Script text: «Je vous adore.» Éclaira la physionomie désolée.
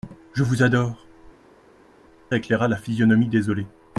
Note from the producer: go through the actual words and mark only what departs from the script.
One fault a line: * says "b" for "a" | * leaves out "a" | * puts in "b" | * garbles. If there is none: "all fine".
all fine